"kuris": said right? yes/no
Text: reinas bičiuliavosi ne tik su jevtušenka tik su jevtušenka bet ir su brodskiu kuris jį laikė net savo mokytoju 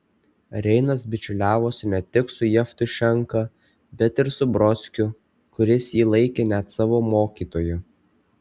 yes